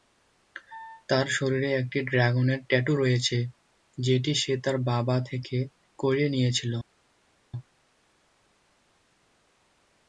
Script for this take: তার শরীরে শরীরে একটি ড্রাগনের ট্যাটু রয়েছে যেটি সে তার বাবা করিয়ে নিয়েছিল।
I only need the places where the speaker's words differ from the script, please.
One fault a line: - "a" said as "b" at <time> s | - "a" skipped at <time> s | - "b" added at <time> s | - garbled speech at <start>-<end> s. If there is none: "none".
- "শরীরে" skipped at 1.7 s
- "থেকে" added at 5.3 s